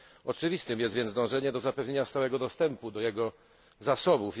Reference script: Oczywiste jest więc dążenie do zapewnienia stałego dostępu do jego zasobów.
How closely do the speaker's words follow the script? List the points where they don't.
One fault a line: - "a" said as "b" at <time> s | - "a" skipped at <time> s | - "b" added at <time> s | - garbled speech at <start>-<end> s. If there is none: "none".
none